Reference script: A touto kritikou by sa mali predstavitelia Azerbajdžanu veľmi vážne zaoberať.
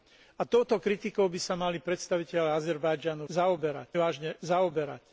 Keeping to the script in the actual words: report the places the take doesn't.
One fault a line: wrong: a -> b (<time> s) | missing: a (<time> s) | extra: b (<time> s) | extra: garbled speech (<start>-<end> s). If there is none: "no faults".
wrong: veľmi -> zaoberať (3.3 s)